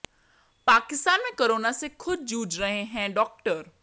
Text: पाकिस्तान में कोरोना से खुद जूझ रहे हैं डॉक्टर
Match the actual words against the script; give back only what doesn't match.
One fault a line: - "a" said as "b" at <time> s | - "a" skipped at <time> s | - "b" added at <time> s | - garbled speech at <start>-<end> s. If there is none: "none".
none